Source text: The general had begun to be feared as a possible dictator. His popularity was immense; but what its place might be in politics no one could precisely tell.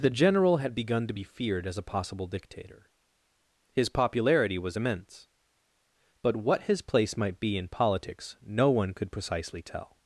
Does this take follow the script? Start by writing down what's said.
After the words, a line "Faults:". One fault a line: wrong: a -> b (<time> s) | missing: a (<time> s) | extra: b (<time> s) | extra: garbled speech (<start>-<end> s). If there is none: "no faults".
The general had begun to be feared as a possible dictator. His popularity was immense; but what his place might be in politics no one could precisely tell.
Faults:
wrong: its -> his (6.7 s)